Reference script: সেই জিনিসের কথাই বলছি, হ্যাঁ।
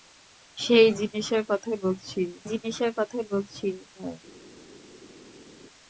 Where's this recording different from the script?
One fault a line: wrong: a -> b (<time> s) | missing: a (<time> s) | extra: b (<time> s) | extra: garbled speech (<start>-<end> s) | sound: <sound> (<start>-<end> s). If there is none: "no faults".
extra: জিনিসের কথাই বলছি (2.5 s)